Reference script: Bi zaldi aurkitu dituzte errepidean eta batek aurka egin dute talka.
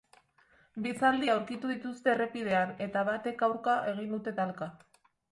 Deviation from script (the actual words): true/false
false